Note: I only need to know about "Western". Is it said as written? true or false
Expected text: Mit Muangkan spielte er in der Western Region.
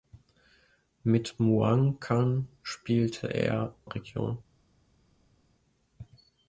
false